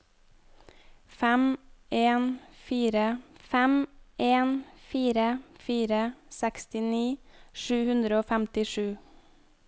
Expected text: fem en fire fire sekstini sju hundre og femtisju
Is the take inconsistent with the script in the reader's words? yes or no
yes